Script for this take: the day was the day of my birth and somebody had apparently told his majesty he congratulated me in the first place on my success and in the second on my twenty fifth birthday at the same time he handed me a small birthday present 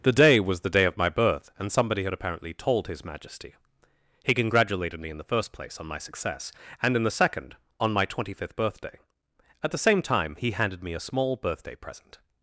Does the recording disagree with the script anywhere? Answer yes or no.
no